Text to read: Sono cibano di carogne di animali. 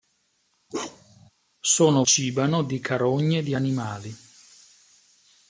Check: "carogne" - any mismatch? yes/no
no